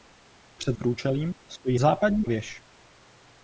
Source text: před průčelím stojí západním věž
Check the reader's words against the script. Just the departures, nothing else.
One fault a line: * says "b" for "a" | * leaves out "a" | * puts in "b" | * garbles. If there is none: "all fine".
all fine